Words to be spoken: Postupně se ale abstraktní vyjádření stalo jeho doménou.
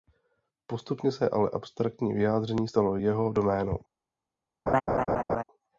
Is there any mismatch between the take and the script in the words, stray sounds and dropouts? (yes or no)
yes